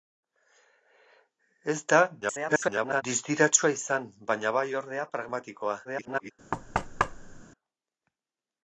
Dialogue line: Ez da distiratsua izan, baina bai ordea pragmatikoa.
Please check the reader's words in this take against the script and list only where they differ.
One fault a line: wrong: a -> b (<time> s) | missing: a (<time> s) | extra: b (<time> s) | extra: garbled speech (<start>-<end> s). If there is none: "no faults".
extra: garbled speech (2.2-3.0 s)
extra: garbled speech (5.8-6.3 s)